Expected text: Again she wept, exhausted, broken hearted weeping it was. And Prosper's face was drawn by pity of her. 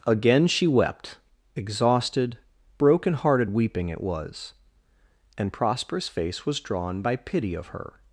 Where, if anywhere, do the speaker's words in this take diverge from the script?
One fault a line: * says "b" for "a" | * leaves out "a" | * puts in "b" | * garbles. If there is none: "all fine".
all fine